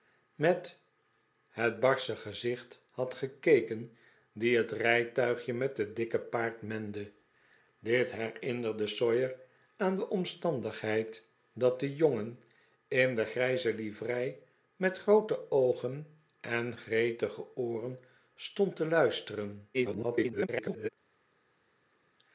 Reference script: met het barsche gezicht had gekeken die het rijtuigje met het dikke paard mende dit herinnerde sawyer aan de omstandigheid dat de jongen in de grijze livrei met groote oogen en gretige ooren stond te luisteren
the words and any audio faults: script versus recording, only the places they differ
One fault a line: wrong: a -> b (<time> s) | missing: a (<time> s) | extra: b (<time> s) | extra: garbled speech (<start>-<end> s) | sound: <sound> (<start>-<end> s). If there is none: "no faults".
extra: garbled speech (19.7-20.9 s)